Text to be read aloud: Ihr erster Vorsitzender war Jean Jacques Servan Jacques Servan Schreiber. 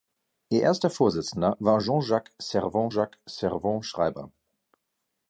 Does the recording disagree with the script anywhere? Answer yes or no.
no